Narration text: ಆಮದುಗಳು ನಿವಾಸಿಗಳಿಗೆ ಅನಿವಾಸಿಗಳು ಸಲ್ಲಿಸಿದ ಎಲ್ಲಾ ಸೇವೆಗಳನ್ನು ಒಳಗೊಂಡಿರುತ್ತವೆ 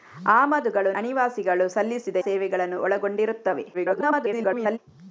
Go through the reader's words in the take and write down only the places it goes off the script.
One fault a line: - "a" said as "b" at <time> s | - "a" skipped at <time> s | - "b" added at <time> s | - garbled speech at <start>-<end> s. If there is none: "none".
- "ನಿವಾಸಿಗಳಿಗೆ" skipped at 0.9 s
- "ಎಲ್ಲಾ" skipped at 2.2 s
- garbled speech at 3.7-4.8 s